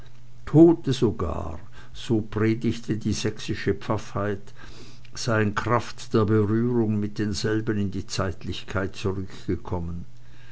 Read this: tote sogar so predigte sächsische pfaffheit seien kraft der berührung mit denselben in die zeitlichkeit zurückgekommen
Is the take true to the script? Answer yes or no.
no